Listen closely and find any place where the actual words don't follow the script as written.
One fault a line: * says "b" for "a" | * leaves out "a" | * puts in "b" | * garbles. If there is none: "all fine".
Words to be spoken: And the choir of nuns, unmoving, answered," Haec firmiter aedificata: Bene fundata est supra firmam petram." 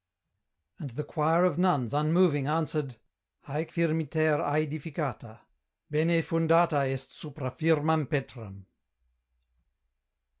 all fine